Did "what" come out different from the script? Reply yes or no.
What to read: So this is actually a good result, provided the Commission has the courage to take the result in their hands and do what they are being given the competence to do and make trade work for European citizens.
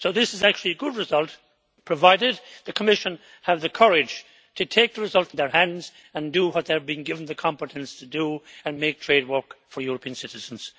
no